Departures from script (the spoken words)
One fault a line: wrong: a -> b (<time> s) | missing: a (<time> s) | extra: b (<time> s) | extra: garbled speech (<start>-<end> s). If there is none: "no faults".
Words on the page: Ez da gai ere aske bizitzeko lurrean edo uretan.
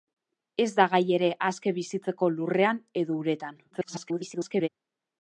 extra: garbled speech (3.7-4.7 s)